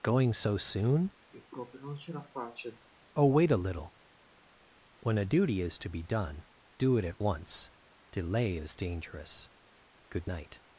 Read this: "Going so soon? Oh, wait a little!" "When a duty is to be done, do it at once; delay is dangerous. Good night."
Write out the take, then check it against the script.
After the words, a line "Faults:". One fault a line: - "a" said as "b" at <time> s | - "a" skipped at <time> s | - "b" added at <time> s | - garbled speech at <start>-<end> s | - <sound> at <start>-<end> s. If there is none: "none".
"Going so soon? Oh, wait a little!" "When a duty is to be done, do it at once; delay is dangerous. Good night."
Faults:
- sigh at 1.3-2.9 s